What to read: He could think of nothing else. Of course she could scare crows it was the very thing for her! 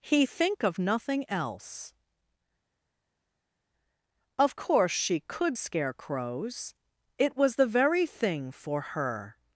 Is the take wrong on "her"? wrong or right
right